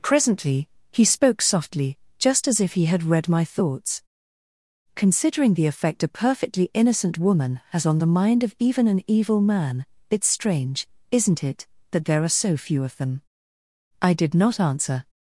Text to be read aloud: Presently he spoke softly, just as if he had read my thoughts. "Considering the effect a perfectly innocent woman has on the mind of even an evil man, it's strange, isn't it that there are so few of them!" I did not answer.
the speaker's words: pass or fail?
pass